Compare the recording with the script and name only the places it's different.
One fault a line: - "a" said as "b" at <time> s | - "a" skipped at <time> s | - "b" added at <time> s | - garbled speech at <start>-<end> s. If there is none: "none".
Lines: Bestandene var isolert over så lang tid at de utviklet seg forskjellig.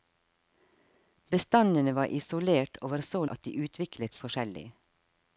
- "lang tid" skipped at 3.2 s
- "seg" skipped at 4.2 s